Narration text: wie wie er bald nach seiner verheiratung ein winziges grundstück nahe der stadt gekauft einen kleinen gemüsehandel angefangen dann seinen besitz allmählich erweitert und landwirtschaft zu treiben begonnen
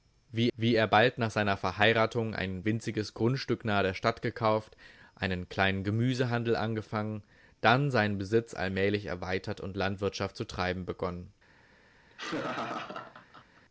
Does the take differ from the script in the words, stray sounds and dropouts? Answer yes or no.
yes